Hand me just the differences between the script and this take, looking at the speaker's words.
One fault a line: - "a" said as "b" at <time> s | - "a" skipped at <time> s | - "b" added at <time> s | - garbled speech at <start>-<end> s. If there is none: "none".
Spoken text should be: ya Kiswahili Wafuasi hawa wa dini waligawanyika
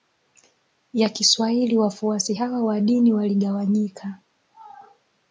none